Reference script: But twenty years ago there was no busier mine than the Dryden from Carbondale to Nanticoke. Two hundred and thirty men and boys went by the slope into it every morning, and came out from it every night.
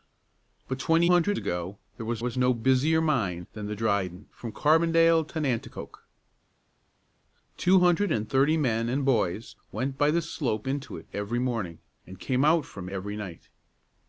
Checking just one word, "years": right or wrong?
wrong